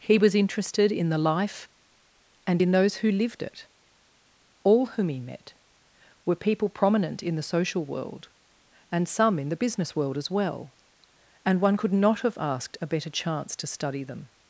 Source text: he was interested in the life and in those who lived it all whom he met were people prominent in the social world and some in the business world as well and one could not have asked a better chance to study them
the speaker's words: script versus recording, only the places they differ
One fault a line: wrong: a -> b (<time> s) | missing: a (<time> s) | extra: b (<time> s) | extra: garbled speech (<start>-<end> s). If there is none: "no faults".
no faults